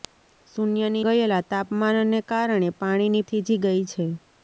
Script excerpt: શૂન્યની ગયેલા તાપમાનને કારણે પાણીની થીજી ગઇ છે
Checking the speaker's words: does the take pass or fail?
pass